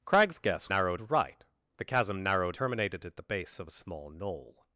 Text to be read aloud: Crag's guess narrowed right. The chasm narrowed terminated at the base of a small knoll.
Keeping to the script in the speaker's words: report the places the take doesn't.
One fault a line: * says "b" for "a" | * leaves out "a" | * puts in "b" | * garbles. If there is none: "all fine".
all fine